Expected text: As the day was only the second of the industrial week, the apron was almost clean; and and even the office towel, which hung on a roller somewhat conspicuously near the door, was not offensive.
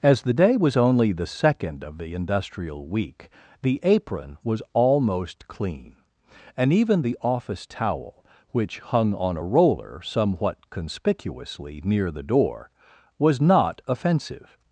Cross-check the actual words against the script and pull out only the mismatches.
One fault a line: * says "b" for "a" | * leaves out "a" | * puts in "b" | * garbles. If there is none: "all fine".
* leaves out "and"